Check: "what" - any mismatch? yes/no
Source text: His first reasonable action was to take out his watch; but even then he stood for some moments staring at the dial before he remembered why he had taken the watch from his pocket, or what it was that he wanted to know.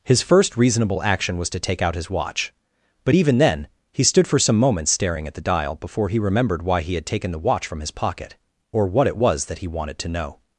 no